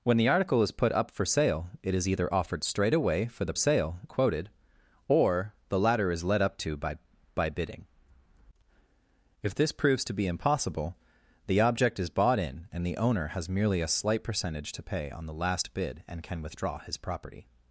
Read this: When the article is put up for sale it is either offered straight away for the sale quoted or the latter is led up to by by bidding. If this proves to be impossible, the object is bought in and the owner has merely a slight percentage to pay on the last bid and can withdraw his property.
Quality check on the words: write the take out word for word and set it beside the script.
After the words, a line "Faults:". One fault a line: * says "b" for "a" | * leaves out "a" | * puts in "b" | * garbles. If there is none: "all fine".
When the article is put up for sale it is either offered straight away for the sale quoted or the latter is led up to by by bidding. If this proves to be impossible, the object is bought in and the owner has merely a slight percentage to pay on the last bid and can withdraw his property.
Faults:
all fine